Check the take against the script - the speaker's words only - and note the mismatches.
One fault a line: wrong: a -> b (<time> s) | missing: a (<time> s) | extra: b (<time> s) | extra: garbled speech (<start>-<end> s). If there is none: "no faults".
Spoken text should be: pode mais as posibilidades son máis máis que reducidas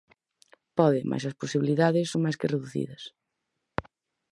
missing: máis (2.4 s)